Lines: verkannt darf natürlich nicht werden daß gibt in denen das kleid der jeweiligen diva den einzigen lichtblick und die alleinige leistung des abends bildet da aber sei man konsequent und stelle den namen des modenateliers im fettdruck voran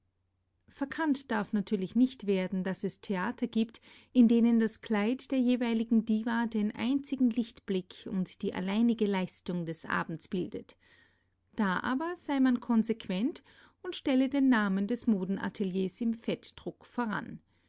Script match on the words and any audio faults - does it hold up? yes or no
no